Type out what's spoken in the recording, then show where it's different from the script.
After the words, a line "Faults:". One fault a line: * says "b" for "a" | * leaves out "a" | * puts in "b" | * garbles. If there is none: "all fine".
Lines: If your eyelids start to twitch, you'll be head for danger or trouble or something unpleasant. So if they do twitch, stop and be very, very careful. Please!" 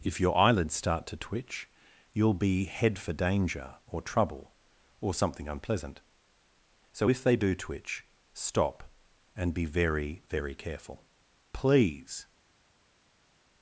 If your eyelids start to twitch, you'll be head for danger or trouble or something unpleasant. So if they do twitch, stop and be very, very careful. Please!"
Faults:
all fine